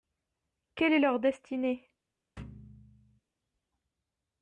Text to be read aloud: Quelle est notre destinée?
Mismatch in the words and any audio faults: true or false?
true